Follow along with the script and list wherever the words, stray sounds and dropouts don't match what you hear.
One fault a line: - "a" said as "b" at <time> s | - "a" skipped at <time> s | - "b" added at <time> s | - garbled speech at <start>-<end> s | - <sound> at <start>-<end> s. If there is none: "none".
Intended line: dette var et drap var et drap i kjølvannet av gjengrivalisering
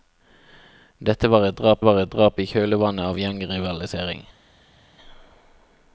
none